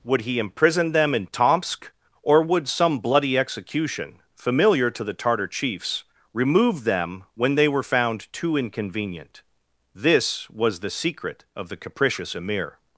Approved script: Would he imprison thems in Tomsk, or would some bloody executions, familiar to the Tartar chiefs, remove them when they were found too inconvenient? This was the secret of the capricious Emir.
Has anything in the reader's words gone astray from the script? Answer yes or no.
yes